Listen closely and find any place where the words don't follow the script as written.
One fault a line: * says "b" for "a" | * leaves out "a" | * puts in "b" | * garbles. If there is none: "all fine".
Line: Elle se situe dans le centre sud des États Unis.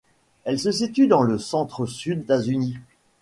* leaves out "des"